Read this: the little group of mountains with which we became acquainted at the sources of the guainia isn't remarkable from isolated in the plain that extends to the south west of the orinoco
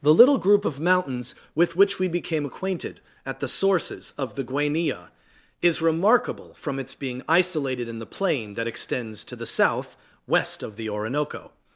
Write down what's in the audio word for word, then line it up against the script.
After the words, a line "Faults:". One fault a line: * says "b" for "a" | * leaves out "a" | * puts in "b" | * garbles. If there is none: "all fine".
the little group of mountains with which we became acquainted at the sources of the guainia is remarkable from its being isolated in the plain that extends to the south west of the orinoco
Faults:
* says "is" for "isn't"
* puts in "its being"